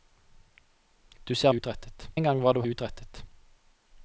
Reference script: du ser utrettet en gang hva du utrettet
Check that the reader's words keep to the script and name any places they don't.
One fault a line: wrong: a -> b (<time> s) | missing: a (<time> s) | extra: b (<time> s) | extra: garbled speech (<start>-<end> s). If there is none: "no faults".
no faults